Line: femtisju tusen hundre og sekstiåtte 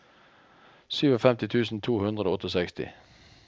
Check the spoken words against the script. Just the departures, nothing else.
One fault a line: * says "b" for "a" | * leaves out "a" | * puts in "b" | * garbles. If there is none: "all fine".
* puts in "to"